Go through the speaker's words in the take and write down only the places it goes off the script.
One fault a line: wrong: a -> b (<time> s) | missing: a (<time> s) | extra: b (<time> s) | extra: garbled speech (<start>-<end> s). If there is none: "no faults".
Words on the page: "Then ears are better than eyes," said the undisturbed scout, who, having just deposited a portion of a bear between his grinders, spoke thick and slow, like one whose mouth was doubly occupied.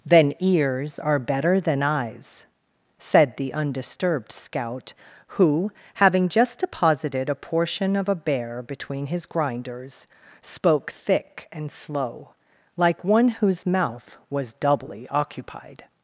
no faults